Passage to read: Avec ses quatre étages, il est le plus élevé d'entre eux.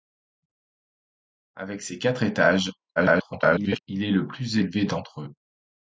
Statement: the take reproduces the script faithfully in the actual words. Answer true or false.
false